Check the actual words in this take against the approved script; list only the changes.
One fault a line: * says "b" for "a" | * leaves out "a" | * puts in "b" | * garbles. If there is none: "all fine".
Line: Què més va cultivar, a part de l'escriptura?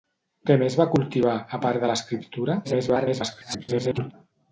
* garbles